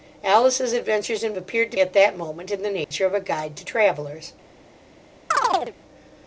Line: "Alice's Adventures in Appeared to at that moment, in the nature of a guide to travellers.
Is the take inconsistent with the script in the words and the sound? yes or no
yes